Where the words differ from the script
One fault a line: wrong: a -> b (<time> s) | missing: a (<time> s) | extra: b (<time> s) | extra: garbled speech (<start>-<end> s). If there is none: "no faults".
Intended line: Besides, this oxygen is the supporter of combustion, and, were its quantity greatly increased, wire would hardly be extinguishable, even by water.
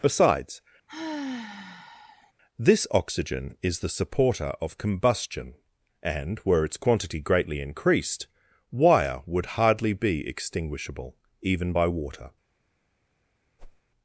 no faults